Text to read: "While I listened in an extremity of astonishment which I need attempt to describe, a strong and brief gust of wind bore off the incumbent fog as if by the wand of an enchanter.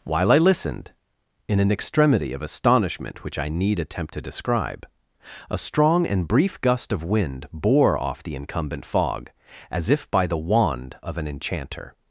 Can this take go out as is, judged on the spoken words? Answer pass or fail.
pass